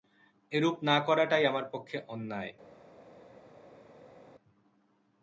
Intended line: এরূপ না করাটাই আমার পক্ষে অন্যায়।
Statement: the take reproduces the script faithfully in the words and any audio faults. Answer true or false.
true